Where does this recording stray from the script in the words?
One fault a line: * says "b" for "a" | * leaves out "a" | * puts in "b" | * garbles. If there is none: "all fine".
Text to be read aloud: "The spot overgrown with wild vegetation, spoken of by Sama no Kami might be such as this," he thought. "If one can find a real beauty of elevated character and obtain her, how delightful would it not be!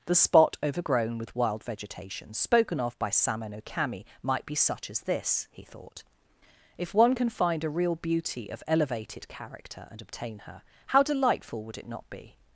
all fine